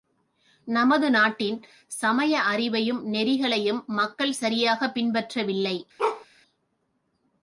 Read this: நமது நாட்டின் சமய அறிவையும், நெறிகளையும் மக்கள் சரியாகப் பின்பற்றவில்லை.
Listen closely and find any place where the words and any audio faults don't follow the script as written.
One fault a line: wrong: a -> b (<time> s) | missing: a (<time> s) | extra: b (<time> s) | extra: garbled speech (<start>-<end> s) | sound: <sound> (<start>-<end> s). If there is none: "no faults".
sound: bark (6.0-6.3 s)